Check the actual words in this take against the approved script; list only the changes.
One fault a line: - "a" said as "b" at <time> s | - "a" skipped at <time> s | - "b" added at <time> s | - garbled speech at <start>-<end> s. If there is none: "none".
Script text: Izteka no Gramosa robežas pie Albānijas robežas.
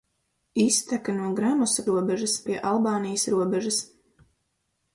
none